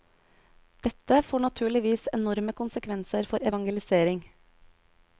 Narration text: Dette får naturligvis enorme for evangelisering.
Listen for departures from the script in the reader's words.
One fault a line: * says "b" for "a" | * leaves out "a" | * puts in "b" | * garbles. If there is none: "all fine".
* puts in "konsekvenser"